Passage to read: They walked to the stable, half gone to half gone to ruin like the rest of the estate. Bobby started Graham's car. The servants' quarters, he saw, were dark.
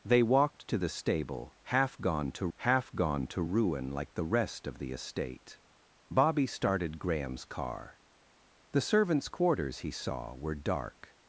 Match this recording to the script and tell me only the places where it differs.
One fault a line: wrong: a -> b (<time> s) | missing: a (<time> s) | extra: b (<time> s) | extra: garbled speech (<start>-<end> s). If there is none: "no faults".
no faults